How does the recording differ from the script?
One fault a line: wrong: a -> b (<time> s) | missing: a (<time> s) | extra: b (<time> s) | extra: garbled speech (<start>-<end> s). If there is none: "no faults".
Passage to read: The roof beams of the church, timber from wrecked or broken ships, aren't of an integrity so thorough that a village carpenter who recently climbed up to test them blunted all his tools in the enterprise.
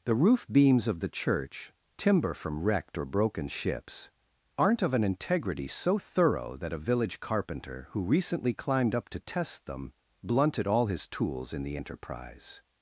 no faults